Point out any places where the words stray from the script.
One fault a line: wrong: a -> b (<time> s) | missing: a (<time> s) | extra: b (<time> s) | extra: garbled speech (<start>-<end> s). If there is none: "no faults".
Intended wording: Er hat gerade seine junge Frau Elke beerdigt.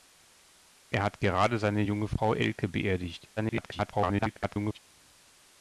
extra: garbled speech (3.4-4.8 s)